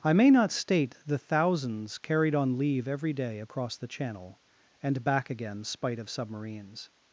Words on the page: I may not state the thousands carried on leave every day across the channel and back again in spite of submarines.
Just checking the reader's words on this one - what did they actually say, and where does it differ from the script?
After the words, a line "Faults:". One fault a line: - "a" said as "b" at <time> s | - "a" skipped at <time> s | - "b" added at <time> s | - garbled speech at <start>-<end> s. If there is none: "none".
I may not state the thousands carried on leave every day across the channel and back again spite of submarines.
Faults:
- "in" skipped at 5.6 s